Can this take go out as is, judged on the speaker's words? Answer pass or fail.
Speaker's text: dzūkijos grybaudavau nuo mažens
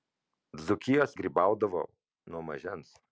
pass